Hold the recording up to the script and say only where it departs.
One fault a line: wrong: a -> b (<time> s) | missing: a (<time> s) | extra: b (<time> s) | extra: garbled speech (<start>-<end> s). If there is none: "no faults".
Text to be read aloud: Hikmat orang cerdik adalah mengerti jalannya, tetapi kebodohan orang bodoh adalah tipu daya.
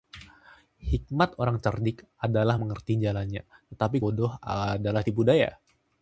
missing: kebodohan orang (4.0 s)